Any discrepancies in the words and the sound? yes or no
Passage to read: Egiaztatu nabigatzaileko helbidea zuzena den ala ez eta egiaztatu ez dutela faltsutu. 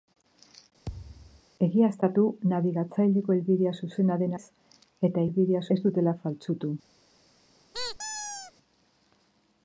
yes